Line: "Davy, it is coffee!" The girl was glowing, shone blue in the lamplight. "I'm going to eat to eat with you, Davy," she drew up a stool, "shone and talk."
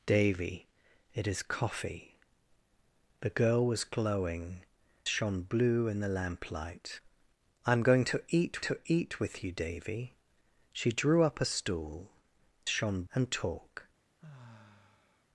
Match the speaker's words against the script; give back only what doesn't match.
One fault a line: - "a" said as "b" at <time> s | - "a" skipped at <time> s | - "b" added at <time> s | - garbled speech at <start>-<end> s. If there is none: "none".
none